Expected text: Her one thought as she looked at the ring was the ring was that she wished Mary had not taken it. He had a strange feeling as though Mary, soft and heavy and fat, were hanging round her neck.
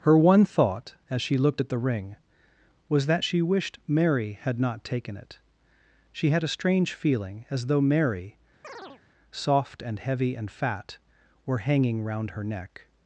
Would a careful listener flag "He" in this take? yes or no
yes